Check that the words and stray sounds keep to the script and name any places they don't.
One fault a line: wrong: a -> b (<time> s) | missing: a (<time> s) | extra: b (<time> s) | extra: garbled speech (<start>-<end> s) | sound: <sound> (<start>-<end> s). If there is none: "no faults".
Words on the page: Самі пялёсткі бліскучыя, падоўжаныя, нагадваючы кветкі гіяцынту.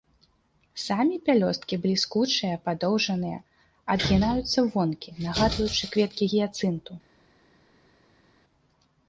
extra: адгінаюцца вонкі (4.0 s)